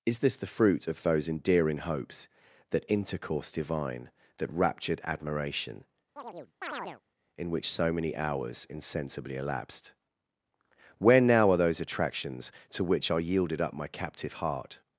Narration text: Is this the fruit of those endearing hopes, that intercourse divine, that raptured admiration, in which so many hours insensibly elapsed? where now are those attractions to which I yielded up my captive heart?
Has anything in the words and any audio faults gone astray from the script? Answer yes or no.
yes